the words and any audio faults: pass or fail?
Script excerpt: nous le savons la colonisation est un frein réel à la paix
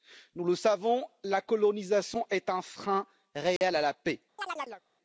fail